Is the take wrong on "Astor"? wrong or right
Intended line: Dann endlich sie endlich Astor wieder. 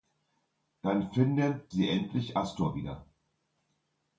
right